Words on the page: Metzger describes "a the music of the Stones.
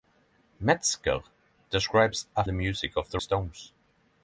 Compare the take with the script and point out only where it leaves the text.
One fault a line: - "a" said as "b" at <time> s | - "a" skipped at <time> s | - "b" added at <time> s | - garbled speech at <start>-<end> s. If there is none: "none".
none